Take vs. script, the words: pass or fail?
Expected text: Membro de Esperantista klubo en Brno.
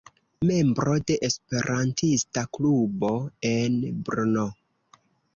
pass